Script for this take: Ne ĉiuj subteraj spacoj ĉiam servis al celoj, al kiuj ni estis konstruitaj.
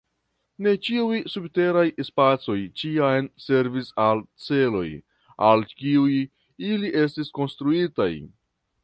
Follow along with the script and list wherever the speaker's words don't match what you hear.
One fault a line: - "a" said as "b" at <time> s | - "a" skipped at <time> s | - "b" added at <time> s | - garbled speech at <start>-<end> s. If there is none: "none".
- "ni" said as "ili" at 6.7 s